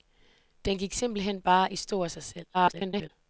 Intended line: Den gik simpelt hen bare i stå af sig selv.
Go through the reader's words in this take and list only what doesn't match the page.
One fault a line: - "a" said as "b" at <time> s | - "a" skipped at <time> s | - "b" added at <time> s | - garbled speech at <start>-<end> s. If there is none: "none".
- garbled speech at 2.5-3.1 s